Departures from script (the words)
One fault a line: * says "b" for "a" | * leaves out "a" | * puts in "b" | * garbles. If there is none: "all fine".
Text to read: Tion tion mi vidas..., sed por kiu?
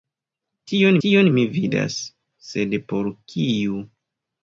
all fine